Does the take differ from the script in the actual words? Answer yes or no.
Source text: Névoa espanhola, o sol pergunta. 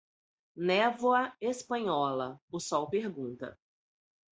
no